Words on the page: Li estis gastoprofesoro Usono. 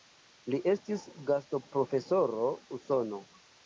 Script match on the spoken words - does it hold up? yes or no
yes